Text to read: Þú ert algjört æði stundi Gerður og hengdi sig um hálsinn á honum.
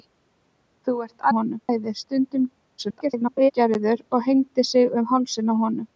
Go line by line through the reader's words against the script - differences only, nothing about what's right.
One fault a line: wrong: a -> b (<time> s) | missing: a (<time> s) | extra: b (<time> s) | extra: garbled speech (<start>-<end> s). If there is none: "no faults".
wrong: algjört -> honum (1.4 s)
extra: garbled speech (2.8-3.5 s)